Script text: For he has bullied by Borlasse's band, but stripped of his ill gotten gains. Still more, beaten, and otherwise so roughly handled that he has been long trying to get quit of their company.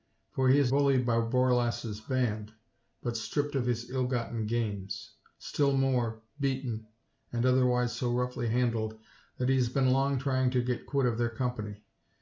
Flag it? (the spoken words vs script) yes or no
no